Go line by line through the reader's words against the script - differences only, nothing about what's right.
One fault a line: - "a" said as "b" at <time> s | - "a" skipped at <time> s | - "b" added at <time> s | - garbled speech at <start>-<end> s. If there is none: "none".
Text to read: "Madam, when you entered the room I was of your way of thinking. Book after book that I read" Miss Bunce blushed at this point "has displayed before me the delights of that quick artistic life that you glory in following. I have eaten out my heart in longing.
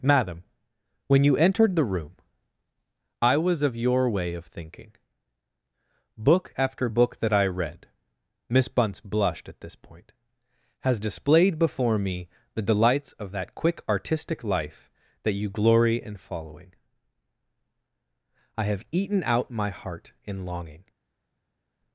none